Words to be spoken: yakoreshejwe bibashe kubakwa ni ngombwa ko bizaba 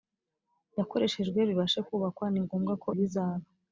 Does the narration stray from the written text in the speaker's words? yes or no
no